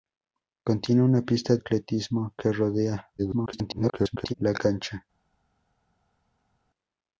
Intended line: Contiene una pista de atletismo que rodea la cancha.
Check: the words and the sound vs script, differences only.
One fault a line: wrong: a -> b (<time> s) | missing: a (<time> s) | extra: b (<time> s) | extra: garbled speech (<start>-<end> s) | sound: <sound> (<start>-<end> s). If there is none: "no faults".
missing: de (1.6 s)
extra: garbled speech (3.2-4.3 s)